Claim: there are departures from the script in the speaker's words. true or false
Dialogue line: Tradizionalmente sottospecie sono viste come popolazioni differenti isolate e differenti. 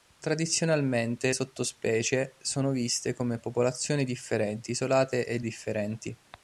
false